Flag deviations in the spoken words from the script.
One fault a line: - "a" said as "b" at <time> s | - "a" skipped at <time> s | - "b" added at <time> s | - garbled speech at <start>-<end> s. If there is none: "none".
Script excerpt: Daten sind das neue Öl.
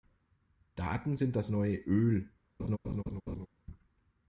none